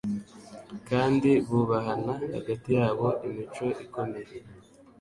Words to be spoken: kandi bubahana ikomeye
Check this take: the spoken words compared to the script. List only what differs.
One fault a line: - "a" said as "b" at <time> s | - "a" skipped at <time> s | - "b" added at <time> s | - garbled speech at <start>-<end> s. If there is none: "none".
- "hagati yabo imico" added at 2.4 s